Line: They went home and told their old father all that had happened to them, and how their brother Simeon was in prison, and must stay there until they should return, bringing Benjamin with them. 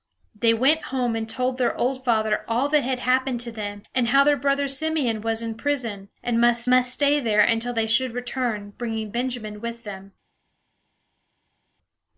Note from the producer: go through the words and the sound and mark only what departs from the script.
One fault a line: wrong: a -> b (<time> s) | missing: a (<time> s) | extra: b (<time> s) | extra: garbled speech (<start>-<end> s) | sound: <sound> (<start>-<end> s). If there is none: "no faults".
extra: must (6.7 s)